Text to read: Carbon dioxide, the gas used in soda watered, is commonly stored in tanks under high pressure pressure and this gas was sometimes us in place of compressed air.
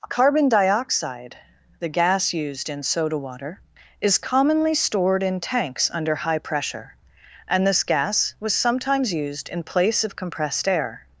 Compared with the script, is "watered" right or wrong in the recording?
wrong